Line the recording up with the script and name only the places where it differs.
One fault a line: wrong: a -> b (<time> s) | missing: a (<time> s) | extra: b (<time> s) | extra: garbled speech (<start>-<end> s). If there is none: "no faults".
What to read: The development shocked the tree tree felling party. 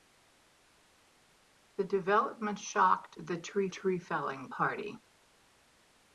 no faults